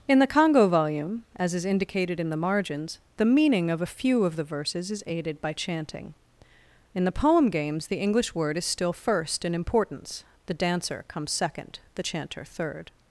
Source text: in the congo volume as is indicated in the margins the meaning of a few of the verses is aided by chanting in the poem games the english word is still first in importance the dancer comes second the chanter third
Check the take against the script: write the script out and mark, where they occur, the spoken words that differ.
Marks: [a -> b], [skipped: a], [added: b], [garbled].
in the congo volume as is indicated in the margins the meaning of a few of the verses is aided by chanting in the poem games the english word is still first in importance the dancer comes second the chanter third